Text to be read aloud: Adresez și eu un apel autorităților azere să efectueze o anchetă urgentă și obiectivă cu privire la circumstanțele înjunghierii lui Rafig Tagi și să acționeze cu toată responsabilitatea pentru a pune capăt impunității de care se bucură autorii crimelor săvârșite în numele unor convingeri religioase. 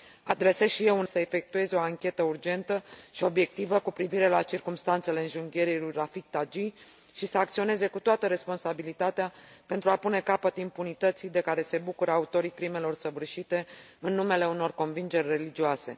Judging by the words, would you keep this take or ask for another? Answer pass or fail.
fail